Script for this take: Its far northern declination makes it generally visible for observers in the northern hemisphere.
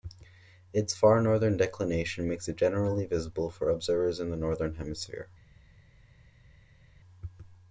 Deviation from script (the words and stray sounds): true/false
false